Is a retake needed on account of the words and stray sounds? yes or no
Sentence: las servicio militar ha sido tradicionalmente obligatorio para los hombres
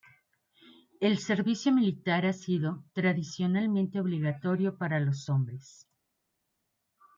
yes